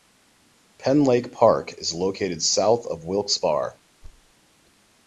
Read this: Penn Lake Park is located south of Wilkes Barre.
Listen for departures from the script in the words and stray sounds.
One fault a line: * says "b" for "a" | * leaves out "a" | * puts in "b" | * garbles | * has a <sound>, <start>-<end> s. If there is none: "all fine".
* has a thud, 4.0-4.3 s